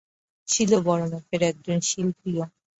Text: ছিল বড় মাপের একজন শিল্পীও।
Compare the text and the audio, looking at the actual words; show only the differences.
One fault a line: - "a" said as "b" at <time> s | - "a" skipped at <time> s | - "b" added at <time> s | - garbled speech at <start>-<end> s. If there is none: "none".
none